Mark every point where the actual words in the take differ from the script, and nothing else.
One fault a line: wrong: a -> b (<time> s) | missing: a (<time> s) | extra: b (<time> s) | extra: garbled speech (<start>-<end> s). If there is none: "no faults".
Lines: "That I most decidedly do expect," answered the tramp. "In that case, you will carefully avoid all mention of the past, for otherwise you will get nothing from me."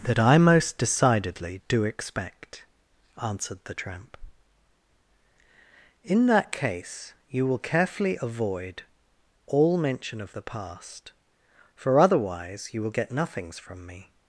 wrong: nothing -> nothings (13.1 s)